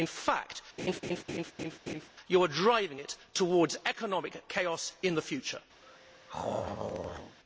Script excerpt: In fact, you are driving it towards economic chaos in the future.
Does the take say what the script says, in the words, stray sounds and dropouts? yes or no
no